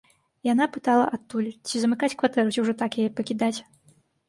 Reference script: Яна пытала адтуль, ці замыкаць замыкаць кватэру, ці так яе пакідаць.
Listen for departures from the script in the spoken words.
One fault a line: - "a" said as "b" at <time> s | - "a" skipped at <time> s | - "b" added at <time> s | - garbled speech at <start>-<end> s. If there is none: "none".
- "замыкаць" skipped at 2.1 s
- "ўжо" added at 2.7 s